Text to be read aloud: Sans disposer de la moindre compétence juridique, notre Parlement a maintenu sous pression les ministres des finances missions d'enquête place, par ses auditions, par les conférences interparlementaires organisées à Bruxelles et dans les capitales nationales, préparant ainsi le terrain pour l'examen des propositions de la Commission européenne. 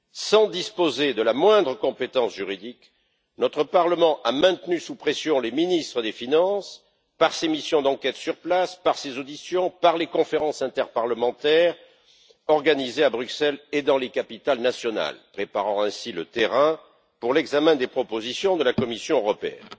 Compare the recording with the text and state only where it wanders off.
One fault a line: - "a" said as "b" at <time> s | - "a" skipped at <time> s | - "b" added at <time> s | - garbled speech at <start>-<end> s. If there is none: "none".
- "par ses" added at 7.2 s
- "sur" added at 8.2 s